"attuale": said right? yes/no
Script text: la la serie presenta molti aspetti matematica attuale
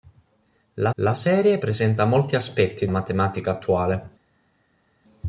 yes